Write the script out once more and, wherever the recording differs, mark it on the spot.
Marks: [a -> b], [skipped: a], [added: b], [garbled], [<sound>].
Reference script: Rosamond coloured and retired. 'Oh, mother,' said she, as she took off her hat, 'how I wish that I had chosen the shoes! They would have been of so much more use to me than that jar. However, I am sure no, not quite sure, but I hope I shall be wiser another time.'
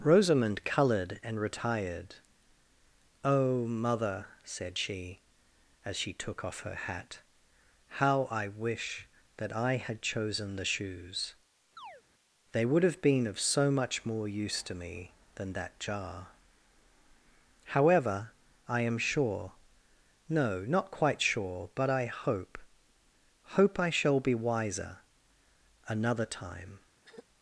Rosamond coloured and retired. 'Oh, mother,' said she, as she took off her hat, 'how I wish that I had chosen the shoes! [chirp] They would have been of so much more use to me than that jar. However, I am sure no, not quite sure, but I hope [added: hope] I shall be wiser another time.' [throat clearing]